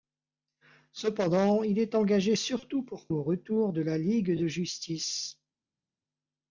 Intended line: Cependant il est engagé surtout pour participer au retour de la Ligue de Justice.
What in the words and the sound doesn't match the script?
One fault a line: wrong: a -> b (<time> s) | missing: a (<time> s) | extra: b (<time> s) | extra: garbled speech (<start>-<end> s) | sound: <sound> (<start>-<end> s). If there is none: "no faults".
missing: participer (3.1 s)